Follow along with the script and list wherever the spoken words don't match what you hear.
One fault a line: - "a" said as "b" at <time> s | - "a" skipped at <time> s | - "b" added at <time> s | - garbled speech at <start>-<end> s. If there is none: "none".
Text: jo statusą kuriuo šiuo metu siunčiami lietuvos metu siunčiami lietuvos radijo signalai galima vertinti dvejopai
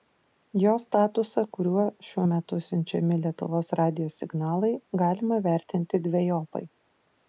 - "metu siunčiami lietuvos" skipped at 3.7 s